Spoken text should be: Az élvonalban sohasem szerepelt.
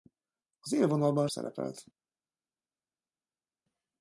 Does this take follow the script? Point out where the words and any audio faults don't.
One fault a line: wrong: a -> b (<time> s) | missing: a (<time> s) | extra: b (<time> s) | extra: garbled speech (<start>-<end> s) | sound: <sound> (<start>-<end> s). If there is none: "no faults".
missing: sohasem (1.3 s)